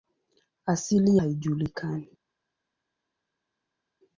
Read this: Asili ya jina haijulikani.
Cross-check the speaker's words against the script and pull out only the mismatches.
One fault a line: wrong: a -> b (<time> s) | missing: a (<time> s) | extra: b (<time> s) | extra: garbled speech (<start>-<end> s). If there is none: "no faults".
missing: ya jina (1.2 s)